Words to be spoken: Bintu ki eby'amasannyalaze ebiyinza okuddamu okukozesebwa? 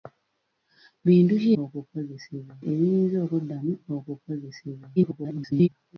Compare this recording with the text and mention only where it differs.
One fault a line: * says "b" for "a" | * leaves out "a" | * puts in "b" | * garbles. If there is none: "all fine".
* says "okukozesebwa" for "eby'amasannyalaze"
* garbles